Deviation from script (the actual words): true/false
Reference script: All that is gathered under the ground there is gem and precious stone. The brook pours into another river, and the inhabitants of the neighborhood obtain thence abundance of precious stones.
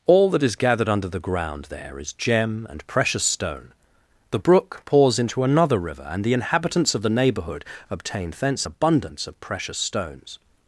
false